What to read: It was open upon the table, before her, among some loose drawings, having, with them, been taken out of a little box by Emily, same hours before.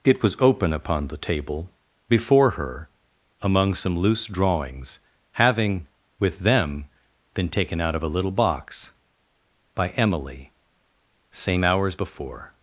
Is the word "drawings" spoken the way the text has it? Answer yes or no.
yes